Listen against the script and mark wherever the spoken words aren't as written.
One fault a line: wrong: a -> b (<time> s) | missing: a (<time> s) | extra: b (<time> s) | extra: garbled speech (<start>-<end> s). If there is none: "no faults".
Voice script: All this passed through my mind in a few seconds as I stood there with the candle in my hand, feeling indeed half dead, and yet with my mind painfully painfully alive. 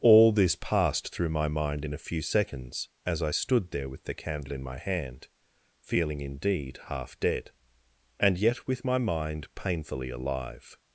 missing: painfully (10.1 s)